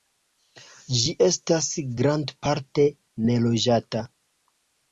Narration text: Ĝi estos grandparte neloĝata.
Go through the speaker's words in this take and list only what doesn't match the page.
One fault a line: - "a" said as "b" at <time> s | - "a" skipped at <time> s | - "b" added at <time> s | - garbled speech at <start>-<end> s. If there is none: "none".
- "estos" said as "estas" at 1.2 s